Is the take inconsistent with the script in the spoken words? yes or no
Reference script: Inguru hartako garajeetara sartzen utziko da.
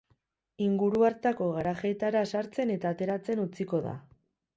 yes